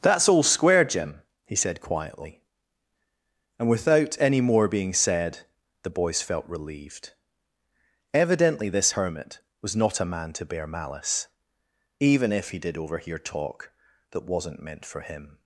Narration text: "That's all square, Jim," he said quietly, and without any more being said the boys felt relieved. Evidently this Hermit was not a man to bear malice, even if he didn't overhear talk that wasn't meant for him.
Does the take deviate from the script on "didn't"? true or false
true